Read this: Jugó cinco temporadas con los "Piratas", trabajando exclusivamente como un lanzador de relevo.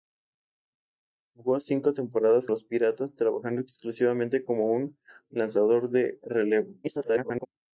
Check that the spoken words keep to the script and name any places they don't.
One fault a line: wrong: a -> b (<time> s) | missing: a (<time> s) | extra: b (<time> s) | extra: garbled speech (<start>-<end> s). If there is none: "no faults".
missing: con (2.5 s)
extra: garbled speech (6.8-7.5 s)